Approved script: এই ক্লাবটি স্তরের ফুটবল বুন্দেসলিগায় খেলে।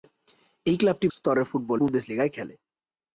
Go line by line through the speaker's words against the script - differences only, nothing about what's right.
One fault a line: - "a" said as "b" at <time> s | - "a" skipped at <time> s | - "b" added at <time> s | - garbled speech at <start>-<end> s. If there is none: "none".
none